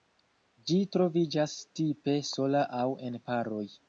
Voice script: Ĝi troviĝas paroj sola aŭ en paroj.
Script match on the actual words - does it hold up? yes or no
no